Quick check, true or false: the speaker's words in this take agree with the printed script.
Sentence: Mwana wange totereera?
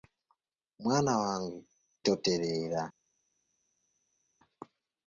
true